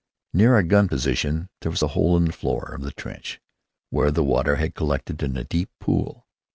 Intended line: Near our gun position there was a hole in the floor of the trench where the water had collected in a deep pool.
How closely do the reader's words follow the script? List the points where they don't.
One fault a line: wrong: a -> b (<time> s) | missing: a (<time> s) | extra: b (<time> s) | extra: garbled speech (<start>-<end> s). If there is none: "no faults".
no faults